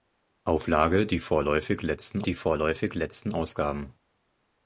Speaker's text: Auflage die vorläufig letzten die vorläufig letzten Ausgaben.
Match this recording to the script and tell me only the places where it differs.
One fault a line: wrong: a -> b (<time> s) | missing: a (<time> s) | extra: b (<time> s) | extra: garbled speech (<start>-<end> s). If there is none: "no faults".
no faults